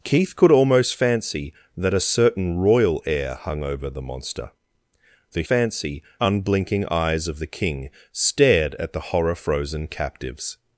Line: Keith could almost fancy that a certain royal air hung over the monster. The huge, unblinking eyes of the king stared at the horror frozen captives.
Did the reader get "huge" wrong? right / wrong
wrong